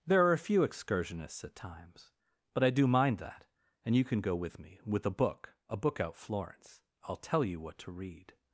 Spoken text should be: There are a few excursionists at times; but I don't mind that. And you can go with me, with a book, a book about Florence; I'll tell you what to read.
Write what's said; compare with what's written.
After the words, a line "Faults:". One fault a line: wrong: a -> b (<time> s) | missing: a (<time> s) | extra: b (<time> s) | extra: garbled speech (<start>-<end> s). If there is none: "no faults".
There are a few excursionists at times; but I do mind that. And you can go with me, with a book, a book out Florence; I'll tell you what to read.
Faults:
wrong: don't -> do (2.7 s)
wrong: about -> out (6.0 s)